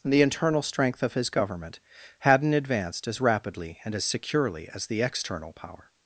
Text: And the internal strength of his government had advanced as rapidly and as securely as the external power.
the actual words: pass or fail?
fail